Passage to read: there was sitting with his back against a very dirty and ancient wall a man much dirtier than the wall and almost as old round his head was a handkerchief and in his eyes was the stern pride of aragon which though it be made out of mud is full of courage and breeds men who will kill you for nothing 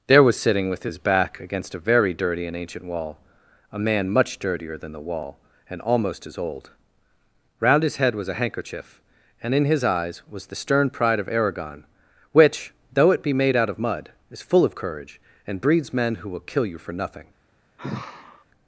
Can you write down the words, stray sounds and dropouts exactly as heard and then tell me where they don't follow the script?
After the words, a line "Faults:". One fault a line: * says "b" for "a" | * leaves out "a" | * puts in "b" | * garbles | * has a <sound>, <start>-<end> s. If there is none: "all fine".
there was sitting with his back against a very dirty and ancient wall a man much dirtier than the wall and almost as old round his head was a handkerchief and in his eyes was the stern pride of aragon which though it be made out of mud is full of courage and breeds men who will kill you for nothing
Faults:
* has a sigh, 17.8-18.4 s